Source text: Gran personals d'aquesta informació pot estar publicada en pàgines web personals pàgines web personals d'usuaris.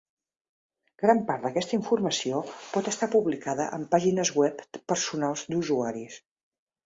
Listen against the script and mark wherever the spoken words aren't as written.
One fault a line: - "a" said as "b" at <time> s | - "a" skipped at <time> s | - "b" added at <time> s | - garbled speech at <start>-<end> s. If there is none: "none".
- "personals" said as "part" at 1.3 s
- "pàgines web personals" skipped at 5.5 s